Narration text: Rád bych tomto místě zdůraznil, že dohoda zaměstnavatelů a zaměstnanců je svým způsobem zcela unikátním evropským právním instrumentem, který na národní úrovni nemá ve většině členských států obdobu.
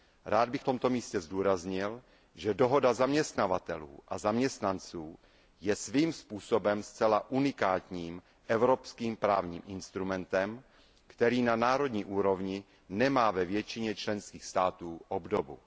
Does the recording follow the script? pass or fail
pass